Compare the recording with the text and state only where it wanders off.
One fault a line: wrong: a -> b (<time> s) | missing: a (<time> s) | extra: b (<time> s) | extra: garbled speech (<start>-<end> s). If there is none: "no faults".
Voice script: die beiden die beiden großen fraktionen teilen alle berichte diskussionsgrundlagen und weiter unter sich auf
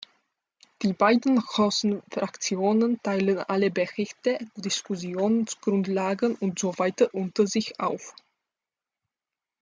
missing: die beiden (1.4 s)
extra: so (6.6 s)